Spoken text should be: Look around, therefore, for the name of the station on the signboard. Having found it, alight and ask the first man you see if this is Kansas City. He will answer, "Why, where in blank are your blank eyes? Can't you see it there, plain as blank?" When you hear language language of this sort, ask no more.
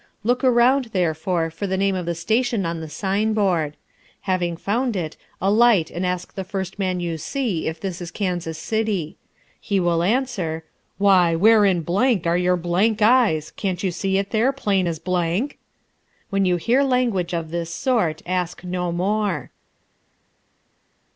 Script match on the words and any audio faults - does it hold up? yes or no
no